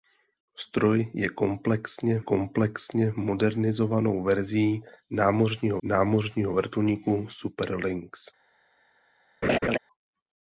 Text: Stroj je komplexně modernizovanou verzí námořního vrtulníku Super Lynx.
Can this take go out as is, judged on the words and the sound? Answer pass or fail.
fail